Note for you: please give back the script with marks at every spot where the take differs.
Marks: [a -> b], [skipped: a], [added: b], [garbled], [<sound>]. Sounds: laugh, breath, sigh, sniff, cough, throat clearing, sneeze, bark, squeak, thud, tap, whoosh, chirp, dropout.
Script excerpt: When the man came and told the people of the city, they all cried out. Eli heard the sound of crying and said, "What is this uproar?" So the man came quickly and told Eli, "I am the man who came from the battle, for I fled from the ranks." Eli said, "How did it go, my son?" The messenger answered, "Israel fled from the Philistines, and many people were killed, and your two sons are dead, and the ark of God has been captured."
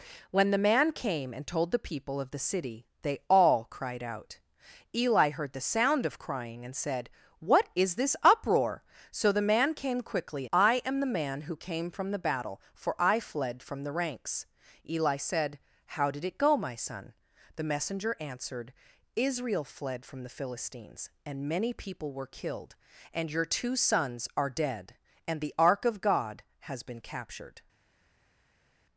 When the man came and told the people of the city, they all cried out. Eli heard the sound of crying and said, "What is this uproar?" So the man came quickly [skipped: and told Eli,] "I am the man who came from the battle, for I fled from the ranks." Eli said, "How did it go, my son?" The messenger answered, "Israel fled from the Philistines, and many people were killed, and your two sons are dead, and the ark of God has been captured."